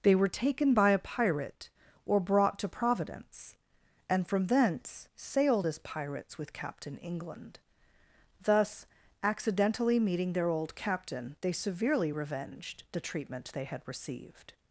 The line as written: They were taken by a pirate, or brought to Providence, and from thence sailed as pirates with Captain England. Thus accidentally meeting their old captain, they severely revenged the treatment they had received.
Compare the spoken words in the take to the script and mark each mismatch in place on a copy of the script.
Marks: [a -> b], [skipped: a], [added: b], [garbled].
They were taken by a pirate, or brought to Providence, and from thence sailed as pirates with Captain England. Thus accidentally meeting their old captain, they severely revenged the treatment they had received.